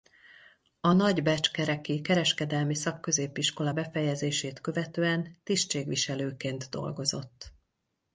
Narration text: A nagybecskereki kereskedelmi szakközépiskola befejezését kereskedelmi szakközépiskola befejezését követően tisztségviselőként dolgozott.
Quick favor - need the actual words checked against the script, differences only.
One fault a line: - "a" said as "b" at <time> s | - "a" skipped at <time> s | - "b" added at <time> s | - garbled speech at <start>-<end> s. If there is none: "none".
- "kereskedelmi szakközépiskola befejezését" skipped at 4.6 s